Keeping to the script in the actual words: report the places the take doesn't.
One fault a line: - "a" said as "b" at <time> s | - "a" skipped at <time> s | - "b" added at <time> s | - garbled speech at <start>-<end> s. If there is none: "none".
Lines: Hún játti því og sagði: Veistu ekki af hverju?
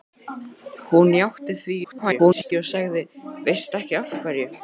- garbled speech at 1.8-2.5 s